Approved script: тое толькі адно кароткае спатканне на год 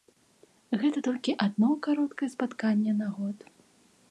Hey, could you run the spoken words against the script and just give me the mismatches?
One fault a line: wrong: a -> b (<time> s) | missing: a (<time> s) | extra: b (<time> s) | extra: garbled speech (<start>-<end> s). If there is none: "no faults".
wrong: тое -> гэта (0.8 s)